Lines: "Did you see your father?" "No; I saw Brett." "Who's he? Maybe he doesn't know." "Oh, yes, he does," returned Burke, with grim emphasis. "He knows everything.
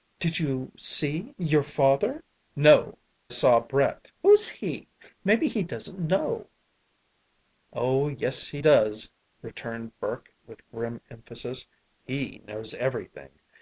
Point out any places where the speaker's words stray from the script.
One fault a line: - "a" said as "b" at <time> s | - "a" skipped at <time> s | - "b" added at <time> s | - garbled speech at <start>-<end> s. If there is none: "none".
- "I" skipped at 3.0 s